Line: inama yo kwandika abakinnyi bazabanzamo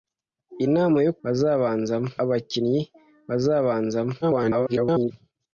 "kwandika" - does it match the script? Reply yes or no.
no